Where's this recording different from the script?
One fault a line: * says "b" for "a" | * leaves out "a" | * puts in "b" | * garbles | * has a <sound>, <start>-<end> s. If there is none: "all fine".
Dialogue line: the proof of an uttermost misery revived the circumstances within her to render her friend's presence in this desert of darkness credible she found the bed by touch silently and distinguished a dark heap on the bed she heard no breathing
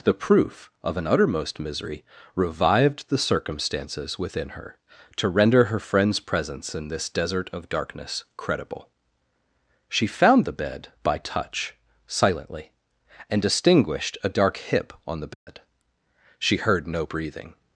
* says "hip" for "heap"
* has a dropout, 15.3-15.5 s